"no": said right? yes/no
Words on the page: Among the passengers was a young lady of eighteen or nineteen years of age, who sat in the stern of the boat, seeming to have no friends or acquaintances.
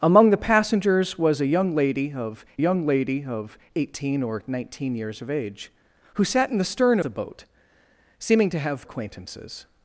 no